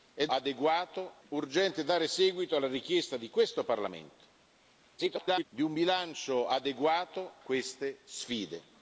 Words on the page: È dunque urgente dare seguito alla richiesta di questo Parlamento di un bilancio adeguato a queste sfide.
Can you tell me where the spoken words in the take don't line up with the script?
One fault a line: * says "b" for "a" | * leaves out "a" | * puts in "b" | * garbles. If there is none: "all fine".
* says "adeguato" for "dunque"
* garbles
* leaves out "a"